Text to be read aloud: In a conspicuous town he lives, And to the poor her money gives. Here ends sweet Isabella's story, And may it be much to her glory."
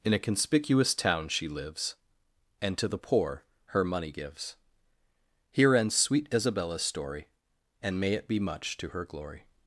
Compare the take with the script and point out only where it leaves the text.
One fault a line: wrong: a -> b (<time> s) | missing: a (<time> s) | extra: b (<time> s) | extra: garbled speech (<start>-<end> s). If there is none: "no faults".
wrong: he -> she (1.3 s)